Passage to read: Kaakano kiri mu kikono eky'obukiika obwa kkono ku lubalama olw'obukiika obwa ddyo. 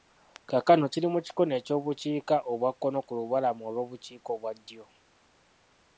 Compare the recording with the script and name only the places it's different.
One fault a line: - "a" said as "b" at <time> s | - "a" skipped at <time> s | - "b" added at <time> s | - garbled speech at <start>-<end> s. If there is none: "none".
none